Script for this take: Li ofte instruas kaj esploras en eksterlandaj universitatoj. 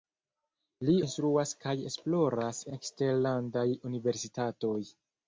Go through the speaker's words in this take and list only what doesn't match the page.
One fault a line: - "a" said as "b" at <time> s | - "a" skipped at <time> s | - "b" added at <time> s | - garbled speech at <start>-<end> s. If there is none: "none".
- "ofte" skipped at 0.9 s
- "en" skipped at 2.6 s